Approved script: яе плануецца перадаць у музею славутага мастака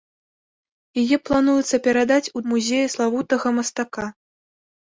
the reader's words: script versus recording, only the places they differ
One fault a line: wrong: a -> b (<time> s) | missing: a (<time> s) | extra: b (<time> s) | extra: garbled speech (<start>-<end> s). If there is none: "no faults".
no faults